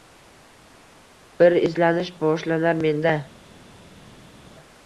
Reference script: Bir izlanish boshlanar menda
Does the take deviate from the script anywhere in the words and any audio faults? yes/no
no